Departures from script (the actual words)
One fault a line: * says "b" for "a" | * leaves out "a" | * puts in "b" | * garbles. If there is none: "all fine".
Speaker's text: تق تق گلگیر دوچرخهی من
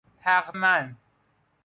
* leaves out "تق گلگیر دوچرخهی"